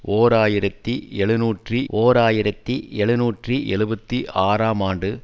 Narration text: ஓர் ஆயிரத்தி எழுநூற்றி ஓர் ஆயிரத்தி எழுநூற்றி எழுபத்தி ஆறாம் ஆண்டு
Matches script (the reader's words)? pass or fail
pass